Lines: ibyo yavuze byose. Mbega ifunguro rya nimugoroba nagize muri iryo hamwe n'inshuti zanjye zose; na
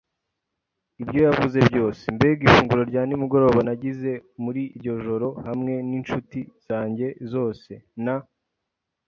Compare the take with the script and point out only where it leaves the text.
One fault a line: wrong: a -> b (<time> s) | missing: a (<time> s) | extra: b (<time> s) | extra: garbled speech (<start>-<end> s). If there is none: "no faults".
extra: joro (5.0 s)